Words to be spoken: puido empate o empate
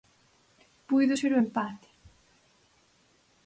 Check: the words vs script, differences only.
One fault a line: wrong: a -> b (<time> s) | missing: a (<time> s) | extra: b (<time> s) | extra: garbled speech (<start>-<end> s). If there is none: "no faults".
wrong: empate -> ser (1.1 s)